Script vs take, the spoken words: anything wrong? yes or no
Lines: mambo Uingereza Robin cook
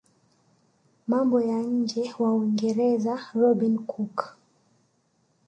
yes